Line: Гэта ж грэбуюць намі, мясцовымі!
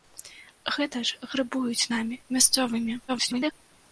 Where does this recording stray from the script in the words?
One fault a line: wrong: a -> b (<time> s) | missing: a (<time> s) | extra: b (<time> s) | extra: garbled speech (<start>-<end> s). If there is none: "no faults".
extra: garbled speech (3.1-3.5 s)